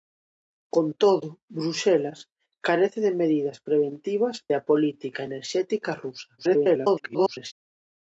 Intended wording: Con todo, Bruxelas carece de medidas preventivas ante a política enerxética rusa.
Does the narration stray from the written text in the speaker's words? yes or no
yes